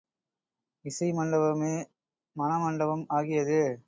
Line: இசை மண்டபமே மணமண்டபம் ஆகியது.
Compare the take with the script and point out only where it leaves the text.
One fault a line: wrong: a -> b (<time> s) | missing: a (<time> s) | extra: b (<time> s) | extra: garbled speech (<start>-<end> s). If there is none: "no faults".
no faults